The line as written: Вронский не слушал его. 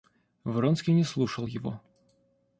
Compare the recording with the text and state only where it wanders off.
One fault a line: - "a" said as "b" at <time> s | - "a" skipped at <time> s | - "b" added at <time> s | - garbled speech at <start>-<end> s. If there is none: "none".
none